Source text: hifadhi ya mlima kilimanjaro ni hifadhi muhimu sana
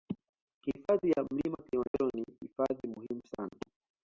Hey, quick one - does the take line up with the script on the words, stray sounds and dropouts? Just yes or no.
no